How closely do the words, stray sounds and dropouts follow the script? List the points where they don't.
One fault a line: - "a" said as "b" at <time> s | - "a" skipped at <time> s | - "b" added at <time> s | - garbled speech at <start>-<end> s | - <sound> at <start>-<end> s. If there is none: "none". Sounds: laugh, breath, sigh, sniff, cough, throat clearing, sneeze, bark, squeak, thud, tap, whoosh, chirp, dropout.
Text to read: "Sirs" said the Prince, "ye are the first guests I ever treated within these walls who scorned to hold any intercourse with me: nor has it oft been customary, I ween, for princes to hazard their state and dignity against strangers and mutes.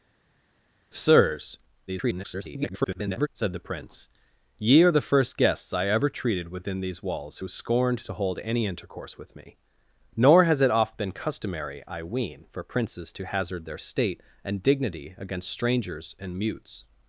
- garbled speech at 1.9-3.3 s